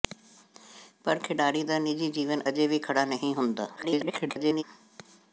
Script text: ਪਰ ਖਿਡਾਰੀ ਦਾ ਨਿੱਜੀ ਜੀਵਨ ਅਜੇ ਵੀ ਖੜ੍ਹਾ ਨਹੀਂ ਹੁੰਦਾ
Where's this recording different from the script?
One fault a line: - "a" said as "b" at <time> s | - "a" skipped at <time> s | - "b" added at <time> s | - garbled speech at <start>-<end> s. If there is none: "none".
- garbled speech at 3.8-4.6 s